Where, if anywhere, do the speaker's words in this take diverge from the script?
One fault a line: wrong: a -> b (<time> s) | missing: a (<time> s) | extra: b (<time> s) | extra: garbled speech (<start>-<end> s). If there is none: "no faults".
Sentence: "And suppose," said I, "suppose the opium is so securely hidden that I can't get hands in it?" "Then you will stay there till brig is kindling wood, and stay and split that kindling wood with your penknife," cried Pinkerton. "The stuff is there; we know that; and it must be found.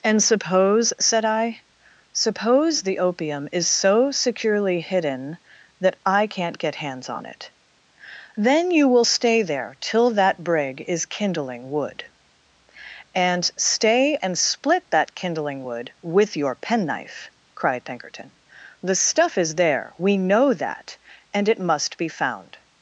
wrong: in -> on (7.1 s)
extra: that (10.1 s)